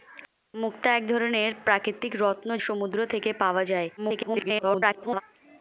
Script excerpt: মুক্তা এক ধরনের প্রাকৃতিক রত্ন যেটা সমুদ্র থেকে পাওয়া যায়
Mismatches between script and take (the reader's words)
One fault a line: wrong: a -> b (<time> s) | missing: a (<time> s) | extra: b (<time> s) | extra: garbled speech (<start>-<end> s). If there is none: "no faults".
missing: যেটা (2.5 s)
extra: garbled speech (4.0-5.2 s)